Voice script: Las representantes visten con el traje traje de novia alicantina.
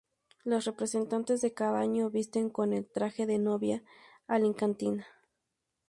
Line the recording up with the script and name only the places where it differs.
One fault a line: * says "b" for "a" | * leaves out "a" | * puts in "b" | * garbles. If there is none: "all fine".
* puts in "de cada año"
* leaves out "traje"